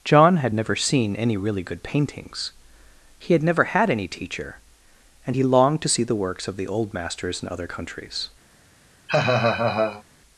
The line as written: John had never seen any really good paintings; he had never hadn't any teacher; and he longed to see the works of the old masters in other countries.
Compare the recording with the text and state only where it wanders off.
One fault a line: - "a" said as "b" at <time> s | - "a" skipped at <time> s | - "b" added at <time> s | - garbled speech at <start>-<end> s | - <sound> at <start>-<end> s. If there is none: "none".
- "hadn't" said as "had" at 3.6 s
- laugh at 9.1-10.0 s